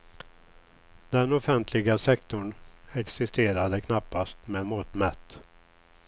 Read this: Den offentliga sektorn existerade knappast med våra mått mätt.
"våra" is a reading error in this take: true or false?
true